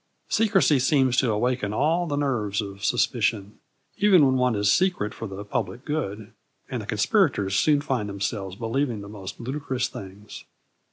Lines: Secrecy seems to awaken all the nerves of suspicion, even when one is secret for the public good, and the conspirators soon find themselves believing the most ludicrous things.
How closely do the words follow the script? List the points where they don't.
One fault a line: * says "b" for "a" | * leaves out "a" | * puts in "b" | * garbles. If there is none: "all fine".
all fine